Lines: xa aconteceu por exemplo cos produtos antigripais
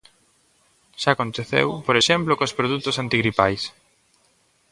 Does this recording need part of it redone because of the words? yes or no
no